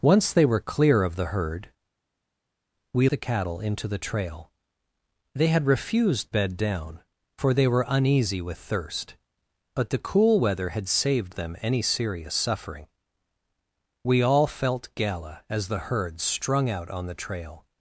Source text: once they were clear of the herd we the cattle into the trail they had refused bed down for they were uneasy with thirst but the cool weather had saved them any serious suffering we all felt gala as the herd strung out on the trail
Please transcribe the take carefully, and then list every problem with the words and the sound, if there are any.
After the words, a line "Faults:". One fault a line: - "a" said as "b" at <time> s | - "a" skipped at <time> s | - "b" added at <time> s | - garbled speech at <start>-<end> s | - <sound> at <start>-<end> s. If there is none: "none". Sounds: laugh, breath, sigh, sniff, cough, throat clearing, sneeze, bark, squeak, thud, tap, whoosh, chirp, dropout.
once they were clear of the herd we the cattle into the trail they had refused bed down for they were uneasy with thirst but the cool weather had saved them any serious suffering we all felt gala as the herd strung out on the trail
Faults:
none